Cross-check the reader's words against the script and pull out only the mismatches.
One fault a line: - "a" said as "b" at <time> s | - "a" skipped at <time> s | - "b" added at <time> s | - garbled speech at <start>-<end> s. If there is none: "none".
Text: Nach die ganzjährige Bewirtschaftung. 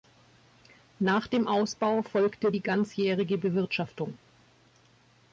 - "dem Ausbau folgte" added at 1.3 s